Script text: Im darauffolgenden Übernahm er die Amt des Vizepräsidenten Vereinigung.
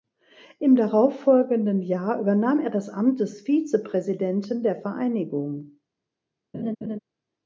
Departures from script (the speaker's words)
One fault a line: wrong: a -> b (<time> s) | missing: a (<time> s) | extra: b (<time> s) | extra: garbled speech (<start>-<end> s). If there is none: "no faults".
extra: Jahr (1.8 s)
wrong: die -> das (2.7 s)
extra: der (4.6 s)